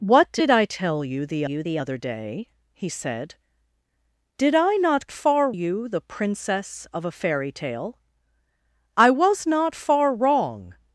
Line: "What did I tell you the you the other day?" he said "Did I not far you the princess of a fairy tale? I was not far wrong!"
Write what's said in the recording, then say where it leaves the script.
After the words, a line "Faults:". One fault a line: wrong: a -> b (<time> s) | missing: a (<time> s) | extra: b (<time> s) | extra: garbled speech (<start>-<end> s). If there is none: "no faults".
"What did I tell you the you the other day?" he said "Did I not far you the princess of a fairy tale? I was not far wrong!"
Faults:
no faults